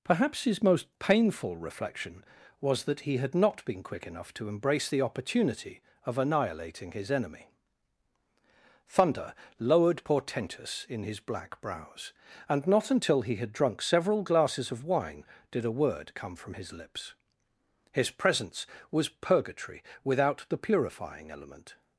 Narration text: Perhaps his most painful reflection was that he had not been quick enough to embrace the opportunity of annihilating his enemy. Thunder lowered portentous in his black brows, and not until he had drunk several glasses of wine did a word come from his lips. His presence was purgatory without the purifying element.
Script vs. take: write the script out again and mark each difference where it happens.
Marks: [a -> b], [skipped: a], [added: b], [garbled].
Perhaps his most painful reflection was that he had not been quick enough to embrace the opportunity of annihilating his enemy. Thunder lowered portentous in his black brows, and not until he had drunk several glasses of wine did a word come from his lips. His presence was purgatory without the purifying element.